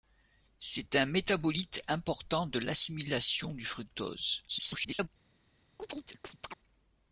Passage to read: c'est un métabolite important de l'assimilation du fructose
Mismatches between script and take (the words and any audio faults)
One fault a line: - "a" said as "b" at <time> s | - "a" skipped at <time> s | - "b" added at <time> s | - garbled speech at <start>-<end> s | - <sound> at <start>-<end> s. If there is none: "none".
- garbled speech at 4.5-5.1 s
- chirp at 5.8-6.6 s